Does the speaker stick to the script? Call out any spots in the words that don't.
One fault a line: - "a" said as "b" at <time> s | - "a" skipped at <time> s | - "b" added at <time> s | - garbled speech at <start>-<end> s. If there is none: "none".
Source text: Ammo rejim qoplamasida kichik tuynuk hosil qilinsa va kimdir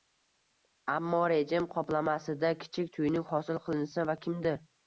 none